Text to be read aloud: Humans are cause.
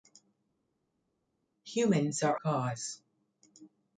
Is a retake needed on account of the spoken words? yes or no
no